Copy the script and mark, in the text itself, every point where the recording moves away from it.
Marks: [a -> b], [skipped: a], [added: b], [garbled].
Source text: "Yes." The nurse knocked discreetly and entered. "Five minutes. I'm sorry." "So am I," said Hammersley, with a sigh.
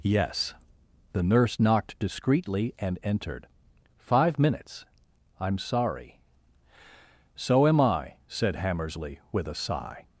"Yes." The nurse knocked discreetly and entered. "Five minutes. I'm sorry." "So am I," said Hammersley, with a sigh.